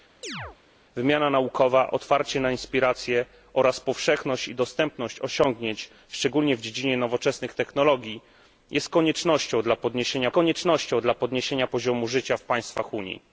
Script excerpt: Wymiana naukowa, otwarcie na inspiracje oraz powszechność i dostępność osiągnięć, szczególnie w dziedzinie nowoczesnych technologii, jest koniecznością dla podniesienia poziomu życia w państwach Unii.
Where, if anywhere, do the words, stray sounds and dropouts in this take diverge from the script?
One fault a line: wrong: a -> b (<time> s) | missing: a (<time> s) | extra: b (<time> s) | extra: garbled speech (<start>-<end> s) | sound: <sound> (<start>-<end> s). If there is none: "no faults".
sound: chirp (0.2-0.6 s)
extra: koniecznością dla podniesienia (10.3 s)